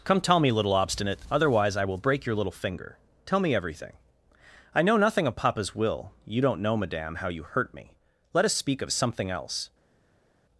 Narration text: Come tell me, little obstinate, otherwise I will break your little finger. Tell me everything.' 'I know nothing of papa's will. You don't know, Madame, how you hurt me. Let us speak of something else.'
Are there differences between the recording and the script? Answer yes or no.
no